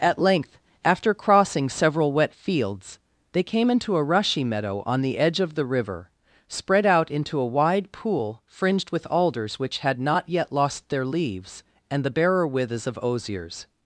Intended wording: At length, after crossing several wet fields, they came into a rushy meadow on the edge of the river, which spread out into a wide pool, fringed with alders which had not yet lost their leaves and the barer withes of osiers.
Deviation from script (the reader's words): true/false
true